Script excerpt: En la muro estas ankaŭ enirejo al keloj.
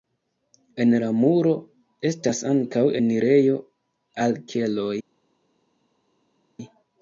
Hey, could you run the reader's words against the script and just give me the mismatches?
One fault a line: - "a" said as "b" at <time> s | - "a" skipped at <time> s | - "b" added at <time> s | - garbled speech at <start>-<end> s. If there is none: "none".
none